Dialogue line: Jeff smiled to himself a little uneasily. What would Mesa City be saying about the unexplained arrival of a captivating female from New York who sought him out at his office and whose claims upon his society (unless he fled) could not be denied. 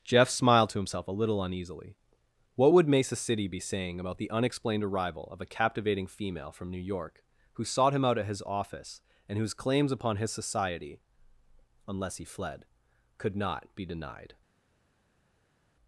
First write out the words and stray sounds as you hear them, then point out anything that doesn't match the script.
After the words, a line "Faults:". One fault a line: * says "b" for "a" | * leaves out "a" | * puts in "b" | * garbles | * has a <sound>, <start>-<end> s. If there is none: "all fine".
Jeff smiled to himself a little uneasily. What would Mesa City be saying about the unexplained arrival of a captivating female from New York who sought him out at his office and whose claims upon his society (unless he fled) could not be denied.
Faults:
all fine